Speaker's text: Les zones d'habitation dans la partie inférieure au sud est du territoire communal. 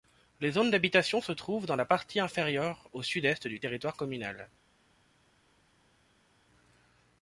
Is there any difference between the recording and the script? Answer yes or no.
yes